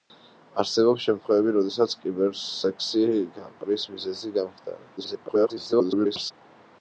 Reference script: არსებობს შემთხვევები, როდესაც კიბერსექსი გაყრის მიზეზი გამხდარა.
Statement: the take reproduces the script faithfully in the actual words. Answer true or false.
false